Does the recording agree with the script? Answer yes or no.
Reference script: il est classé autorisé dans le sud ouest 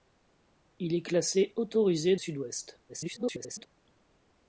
no